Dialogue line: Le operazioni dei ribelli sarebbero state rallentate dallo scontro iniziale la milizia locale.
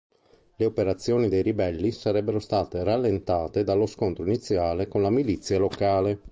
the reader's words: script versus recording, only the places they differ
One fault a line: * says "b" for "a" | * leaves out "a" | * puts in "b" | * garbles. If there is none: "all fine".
* puts in "con"